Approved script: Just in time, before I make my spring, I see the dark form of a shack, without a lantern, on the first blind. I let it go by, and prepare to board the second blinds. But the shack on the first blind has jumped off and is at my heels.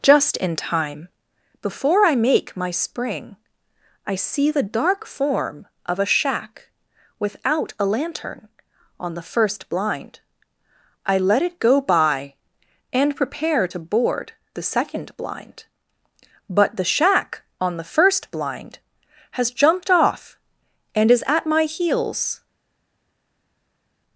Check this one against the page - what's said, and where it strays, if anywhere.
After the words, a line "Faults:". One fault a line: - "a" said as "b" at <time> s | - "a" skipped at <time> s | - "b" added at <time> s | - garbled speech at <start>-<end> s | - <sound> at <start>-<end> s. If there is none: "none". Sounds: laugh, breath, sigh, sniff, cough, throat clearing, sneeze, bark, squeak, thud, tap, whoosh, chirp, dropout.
Just in time, before I make my spring, I see the dark form of a shack, without a lantern, on the first blind. I let it go by, and prepare to board the second blind. But the shack on the first blind has jumped off and is at my heels.
Faults:
- "blinds" said as "blind" at 15.2 s